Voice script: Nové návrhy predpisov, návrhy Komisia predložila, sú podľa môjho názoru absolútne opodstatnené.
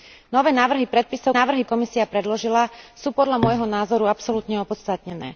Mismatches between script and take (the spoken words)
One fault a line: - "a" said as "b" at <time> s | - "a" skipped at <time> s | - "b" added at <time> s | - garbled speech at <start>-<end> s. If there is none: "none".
none